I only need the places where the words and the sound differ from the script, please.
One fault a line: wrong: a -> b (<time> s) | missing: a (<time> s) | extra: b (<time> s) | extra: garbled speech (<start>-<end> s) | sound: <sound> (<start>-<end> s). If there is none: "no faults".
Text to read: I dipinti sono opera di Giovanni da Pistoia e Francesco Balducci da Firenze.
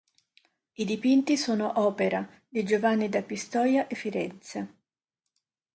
missing: Francesco Balducci da (3.9 s)